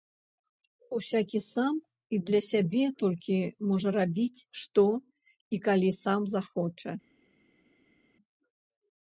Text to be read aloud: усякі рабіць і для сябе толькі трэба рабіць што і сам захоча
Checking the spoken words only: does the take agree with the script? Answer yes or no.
no